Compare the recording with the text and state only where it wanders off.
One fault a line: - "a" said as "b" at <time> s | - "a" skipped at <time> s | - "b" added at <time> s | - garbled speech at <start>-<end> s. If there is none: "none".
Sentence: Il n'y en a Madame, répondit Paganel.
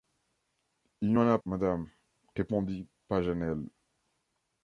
none